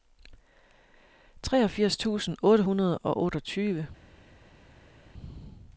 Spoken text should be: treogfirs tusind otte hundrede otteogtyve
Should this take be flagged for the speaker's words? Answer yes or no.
yes